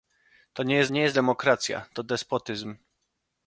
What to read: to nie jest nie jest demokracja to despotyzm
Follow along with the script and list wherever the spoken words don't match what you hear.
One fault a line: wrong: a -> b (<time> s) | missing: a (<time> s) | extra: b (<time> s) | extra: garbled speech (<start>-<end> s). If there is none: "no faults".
no faults